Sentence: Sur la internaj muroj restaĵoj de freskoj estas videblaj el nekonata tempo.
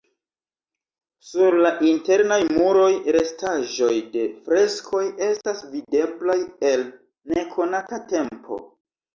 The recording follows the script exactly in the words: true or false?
true